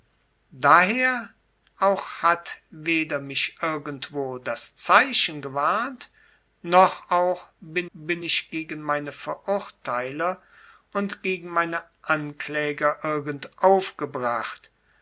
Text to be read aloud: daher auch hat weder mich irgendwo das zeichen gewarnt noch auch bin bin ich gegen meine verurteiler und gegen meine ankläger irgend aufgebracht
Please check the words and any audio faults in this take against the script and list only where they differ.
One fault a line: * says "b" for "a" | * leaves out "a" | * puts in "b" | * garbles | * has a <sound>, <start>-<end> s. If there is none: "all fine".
all fine